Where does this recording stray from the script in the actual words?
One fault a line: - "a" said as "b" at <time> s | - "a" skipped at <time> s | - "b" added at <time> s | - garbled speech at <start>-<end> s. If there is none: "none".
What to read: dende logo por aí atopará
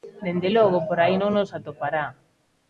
- "non nos" added at 1.2 s